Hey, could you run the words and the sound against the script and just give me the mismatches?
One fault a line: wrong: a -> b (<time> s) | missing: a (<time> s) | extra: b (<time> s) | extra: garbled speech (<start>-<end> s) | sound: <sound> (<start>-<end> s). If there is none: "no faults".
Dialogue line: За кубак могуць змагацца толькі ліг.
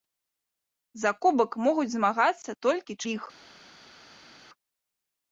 no faults